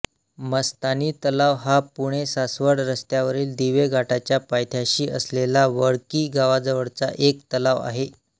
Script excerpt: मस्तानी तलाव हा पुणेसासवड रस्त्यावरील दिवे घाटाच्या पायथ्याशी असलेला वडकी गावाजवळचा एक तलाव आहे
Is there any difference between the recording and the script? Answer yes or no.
no